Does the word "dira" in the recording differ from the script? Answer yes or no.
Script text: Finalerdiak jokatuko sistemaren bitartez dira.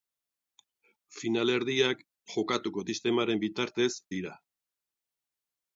no